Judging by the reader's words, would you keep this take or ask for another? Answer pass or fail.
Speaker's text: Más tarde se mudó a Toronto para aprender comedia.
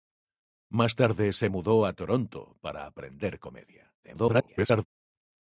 fail